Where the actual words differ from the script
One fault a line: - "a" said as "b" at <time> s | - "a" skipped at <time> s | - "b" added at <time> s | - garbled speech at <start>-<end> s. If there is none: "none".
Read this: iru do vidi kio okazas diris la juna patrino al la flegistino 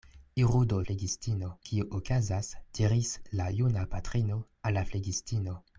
- "vidi" said as "flegistino" at 0.9 s